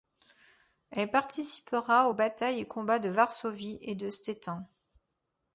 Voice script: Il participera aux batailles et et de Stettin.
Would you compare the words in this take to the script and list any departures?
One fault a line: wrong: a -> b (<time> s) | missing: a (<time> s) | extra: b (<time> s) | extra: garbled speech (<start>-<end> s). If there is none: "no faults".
wrong: Il -> Elle (0.9 s)
extra: combats de Varsovie (2.6 s)